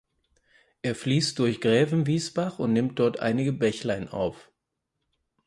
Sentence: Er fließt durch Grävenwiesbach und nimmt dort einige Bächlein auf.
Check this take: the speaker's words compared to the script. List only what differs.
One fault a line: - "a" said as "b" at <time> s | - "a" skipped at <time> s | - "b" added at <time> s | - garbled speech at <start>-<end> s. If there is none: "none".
none